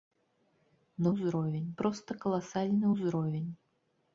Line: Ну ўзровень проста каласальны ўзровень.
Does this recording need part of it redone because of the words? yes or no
no